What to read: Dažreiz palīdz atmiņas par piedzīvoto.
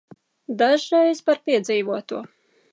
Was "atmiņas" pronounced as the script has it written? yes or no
no